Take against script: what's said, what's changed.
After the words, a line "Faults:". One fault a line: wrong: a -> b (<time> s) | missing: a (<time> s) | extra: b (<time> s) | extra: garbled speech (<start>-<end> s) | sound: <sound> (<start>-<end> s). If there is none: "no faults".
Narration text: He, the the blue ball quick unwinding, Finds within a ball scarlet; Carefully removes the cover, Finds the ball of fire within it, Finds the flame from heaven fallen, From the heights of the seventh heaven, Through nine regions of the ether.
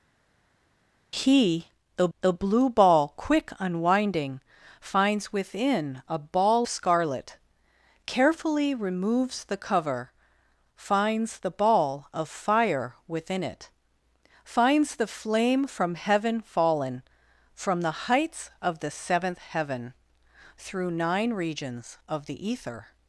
He, the the blue ball quick unwinding, Finds within a ball scarlet; Carefully removes the cover, Finds the ball of fire within it, Finds the flame from heaven fallen, From the heights of the seventh heaven, Through nine regions of the ether.
Faults:
no faults